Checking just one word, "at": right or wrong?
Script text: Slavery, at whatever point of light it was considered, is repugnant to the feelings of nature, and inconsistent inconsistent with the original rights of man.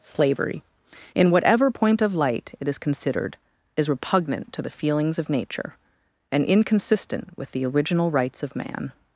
wrong